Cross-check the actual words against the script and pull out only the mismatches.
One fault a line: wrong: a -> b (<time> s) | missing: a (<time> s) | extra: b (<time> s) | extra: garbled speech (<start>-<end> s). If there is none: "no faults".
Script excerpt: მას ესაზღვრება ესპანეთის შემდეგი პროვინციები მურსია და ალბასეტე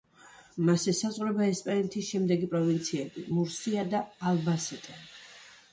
no faults